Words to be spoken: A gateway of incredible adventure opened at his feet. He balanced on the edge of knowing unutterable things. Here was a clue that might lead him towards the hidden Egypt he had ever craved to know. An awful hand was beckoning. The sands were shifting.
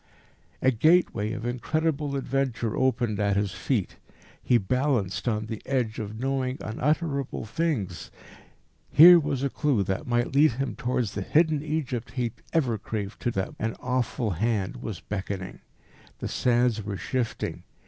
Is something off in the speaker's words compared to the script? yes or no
yes